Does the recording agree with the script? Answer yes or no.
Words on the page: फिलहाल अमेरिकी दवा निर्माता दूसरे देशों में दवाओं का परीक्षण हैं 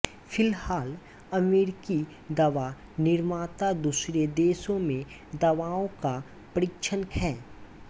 yes